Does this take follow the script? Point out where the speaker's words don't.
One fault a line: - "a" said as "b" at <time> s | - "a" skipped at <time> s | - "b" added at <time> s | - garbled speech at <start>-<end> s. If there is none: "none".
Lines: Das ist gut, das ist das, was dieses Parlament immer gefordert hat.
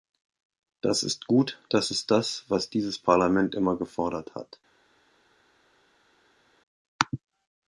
none